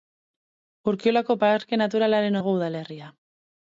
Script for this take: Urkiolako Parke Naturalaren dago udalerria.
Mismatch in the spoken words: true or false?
false